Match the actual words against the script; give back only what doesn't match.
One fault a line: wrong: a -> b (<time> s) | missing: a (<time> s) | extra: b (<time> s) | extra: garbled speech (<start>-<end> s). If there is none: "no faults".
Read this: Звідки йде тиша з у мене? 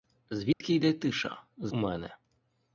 no faults